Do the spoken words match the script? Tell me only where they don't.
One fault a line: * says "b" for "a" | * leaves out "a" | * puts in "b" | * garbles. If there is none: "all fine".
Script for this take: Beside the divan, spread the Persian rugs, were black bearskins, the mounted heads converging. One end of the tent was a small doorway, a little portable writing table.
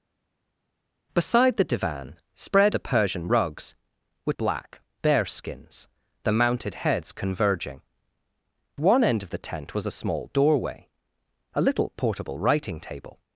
all fine